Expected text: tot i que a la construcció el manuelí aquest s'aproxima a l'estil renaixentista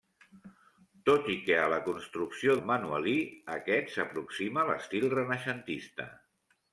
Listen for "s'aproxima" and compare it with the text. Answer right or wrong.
right